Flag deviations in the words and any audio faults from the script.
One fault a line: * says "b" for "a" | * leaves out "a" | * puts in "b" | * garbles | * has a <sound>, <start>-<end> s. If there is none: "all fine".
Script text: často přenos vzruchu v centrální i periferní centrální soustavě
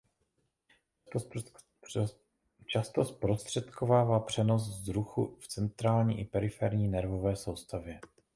* puts in "zprostředkovává"
* says "nervové" for "centrální"